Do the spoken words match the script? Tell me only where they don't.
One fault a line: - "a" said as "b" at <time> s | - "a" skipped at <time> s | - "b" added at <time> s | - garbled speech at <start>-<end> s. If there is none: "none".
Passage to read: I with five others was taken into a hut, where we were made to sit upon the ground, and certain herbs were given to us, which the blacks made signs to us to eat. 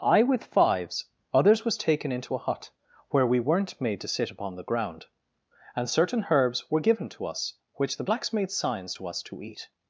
- "five" said as "fives" at 0.4 s
- "were" said as "weren't" at 3.4 s